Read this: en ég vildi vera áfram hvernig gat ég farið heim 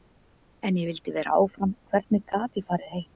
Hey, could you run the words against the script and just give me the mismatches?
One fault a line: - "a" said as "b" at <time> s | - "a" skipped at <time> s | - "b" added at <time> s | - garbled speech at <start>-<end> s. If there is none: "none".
none